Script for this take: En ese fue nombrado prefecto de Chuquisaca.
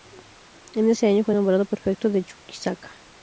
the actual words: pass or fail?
fail